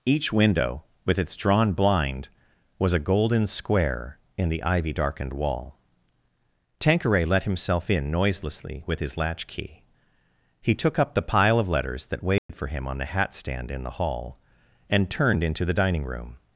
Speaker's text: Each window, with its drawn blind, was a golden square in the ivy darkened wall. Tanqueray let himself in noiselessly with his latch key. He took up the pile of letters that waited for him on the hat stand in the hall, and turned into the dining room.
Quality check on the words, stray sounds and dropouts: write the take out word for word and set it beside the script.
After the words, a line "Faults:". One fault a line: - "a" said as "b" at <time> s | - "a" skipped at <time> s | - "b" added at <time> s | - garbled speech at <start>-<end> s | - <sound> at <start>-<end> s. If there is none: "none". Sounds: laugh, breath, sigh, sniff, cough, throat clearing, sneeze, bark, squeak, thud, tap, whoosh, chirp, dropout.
Each window, with its drawn blind, was a golden square in the ivy darkened wall. Tanqueray let himself in noiselessly with his latch key. He took up the pile of letters that waited for him on the hat stand in the hall, and turned into the dining room.
Faults:
- dropout at 12.4-12.5 s